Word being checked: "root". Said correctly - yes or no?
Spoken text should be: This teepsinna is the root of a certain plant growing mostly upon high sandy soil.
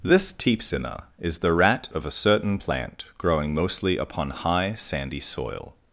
no